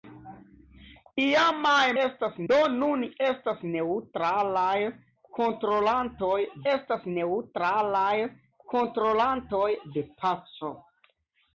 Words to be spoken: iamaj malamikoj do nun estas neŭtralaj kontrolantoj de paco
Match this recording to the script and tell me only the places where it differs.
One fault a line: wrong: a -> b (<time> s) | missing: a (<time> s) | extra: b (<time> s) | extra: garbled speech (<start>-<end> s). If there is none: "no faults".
wrong: malamikoj -> estas (2.0 s)
extra: estas neŭtralaj kontrolantoj (6.7 s)